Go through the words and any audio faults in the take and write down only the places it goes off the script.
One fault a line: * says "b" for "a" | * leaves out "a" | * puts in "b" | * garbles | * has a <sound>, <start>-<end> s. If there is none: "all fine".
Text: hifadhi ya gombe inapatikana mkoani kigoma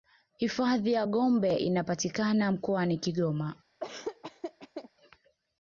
* has a laugh, 3.8-4.9 s